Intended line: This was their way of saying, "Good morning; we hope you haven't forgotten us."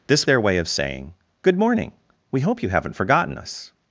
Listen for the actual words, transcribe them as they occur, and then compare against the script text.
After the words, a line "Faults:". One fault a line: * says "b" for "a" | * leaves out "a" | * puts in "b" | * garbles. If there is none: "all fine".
This their way of saying, "Good morning; we hope you haven't forgotten us."
Faults:
* leaves out "was"